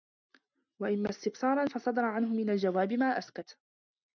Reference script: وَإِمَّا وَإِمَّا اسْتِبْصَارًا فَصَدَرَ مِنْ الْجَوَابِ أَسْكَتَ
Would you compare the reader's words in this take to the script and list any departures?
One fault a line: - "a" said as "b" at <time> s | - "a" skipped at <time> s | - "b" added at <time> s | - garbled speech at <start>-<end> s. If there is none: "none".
- "وَإِمَّا" skipped at 1.1 s
- "عَنْهُ" added at 2.0 s
- "مَا" added at 2.9 s